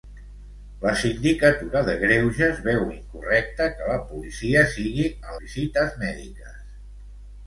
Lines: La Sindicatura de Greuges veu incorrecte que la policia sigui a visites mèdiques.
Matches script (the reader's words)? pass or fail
pass